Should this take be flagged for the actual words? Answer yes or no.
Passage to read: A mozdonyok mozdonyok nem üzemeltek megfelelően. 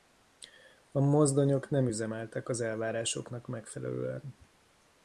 yes